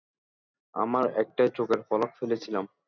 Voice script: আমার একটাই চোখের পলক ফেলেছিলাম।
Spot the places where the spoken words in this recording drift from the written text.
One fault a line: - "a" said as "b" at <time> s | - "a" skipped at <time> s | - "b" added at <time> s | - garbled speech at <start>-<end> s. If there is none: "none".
none